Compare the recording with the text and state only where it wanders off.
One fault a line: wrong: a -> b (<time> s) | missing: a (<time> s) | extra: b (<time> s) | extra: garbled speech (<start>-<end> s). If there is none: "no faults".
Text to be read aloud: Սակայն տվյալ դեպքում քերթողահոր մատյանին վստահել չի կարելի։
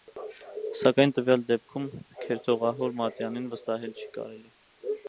no faults